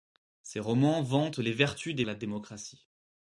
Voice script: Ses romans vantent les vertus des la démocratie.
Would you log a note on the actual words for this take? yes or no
no